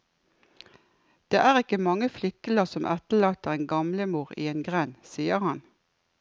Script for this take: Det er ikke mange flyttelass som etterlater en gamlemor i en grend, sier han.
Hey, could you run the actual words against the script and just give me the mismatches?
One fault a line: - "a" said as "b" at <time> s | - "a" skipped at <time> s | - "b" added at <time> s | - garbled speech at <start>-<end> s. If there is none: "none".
none